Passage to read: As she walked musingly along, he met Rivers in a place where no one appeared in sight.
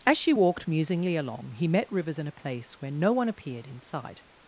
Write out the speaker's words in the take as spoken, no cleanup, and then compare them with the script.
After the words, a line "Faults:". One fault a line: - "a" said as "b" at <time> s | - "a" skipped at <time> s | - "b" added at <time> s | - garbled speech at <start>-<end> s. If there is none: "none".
As she walked musingly along, he met Rivers in a place where no one appeared in sight.
Faults:
none